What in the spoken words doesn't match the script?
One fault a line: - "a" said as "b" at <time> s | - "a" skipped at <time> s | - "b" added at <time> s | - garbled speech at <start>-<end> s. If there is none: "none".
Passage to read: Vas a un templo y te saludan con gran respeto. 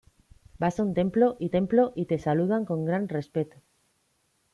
- "templo y" added at 1.5 s